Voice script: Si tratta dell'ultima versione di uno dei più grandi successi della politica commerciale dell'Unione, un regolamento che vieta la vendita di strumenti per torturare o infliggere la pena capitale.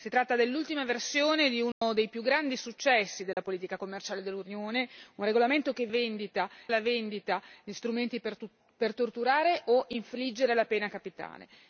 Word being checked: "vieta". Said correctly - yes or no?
no